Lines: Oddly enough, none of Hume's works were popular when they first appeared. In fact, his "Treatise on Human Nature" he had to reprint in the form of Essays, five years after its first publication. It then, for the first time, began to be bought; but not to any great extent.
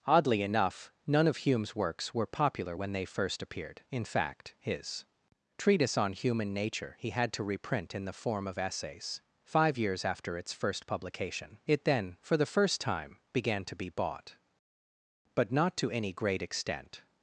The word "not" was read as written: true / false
true